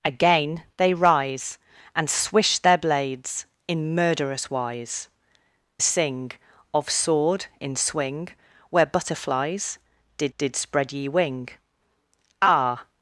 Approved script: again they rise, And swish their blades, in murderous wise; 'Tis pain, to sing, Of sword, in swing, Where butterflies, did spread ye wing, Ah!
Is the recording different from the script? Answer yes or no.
yes